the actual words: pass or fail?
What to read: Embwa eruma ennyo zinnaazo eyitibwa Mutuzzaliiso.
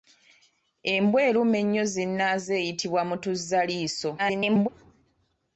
fail